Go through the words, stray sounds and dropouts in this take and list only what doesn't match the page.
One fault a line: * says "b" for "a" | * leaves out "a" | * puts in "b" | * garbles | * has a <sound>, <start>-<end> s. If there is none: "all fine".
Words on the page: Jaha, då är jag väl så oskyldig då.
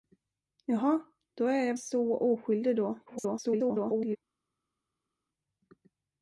* leaves out "väl"
* garbles